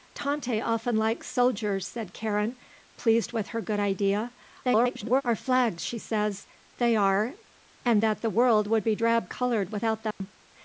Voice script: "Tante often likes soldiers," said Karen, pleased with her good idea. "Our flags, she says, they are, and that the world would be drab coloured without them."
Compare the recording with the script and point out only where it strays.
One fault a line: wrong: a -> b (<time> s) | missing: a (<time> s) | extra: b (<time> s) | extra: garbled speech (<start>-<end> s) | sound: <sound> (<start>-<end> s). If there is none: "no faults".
extra: garbled speech (4.6-5.2 s)
sound: dropout (10.1-10.2 s)